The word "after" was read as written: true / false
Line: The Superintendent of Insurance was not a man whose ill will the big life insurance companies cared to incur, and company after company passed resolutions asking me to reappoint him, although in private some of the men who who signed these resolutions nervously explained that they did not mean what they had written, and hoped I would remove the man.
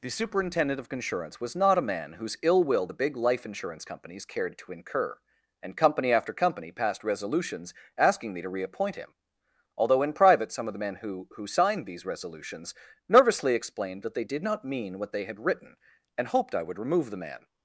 true